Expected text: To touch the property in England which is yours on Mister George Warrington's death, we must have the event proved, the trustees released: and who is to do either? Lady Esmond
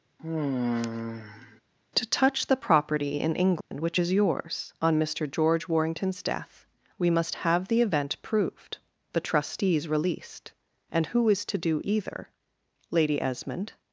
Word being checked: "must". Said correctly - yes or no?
yes